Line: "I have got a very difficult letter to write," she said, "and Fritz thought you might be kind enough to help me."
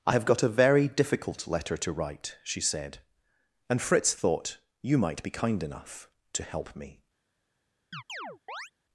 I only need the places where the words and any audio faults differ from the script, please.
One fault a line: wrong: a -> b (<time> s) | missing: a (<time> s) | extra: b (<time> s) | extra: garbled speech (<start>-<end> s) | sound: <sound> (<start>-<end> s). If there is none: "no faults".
sound: chirp (7.9-8.7 s)